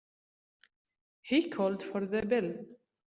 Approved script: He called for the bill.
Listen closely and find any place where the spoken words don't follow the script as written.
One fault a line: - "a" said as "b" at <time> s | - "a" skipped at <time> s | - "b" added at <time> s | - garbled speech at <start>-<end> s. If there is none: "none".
none